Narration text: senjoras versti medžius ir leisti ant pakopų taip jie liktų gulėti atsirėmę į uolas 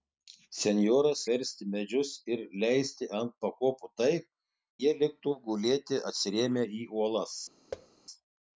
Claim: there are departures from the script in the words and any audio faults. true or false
true